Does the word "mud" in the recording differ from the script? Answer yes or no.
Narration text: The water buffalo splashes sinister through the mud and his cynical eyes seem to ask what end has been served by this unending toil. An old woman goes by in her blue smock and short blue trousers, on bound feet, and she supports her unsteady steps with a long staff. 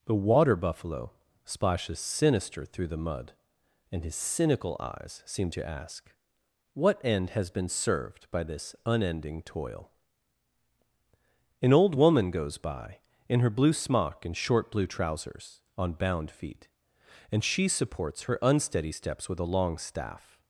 no